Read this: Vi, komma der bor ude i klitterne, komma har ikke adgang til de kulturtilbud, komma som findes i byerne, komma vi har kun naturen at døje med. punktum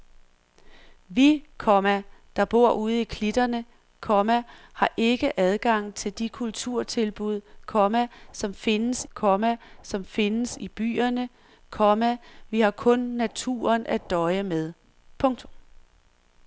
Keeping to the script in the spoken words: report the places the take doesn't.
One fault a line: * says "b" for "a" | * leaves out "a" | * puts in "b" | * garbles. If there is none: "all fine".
* puts in "komma som findes"